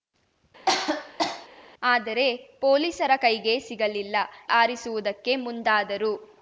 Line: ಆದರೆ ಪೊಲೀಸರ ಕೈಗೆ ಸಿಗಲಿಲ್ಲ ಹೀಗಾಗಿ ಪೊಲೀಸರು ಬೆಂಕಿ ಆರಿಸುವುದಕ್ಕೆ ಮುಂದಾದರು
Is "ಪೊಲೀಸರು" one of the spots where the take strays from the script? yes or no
yes